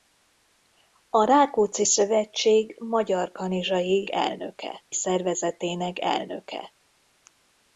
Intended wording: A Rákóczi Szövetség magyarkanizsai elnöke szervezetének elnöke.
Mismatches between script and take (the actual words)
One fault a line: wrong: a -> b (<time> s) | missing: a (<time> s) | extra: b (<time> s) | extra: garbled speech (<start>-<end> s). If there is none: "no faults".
no faults